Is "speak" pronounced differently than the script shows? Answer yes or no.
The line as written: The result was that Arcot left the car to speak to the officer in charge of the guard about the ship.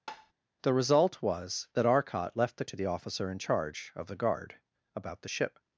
yes